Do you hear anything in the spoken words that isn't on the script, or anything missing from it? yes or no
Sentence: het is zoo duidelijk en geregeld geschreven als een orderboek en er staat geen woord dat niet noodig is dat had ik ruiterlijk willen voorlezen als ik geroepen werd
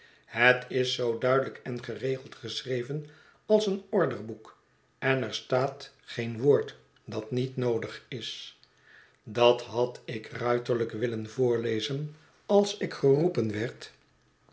no